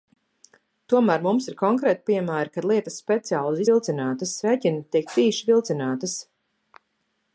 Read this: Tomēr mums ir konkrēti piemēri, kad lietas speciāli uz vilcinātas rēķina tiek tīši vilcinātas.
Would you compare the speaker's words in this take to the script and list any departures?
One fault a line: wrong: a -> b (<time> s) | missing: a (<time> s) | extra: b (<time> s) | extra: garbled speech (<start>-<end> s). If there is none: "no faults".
no faults